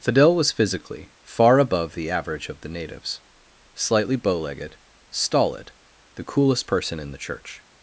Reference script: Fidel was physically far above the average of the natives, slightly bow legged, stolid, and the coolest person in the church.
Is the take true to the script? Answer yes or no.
no